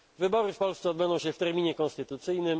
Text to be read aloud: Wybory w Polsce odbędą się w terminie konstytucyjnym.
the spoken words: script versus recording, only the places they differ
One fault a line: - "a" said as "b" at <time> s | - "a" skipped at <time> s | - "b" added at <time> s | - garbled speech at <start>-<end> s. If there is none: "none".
none